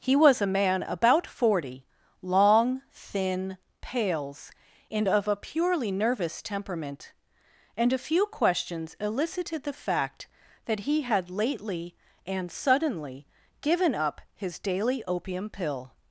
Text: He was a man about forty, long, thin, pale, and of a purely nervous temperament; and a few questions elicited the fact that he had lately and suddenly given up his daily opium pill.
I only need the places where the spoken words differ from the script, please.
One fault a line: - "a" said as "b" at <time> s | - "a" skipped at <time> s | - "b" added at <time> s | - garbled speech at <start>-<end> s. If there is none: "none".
- "pale" said as "pales" at 3.8 s